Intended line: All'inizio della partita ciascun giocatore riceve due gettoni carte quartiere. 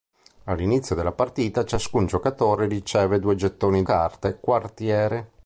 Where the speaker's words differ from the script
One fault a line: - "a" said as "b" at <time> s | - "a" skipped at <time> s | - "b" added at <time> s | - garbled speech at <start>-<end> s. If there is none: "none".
none